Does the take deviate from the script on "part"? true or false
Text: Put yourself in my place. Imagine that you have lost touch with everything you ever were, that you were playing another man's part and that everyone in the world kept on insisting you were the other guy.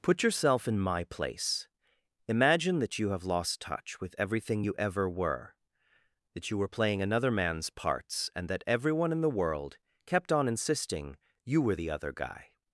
true